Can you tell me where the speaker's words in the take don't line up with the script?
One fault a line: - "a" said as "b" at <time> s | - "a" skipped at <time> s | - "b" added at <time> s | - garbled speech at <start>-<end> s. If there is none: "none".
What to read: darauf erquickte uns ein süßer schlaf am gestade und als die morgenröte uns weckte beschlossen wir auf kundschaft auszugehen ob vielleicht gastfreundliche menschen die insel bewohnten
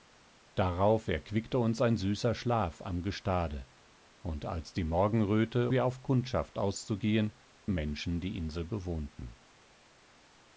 - "uns weckte beschlossen" skipped at 5.7 s
- "ob vielleicht gastfreundliche" skipped at 7.3 s